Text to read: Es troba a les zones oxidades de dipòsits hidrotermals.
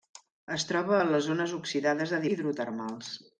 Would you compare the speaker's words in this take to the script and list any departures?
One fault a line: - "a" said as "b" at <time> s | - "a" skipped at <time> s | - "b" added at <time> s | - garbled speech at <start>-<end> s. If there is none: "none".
- "dipòsits" skipped at 2.2 s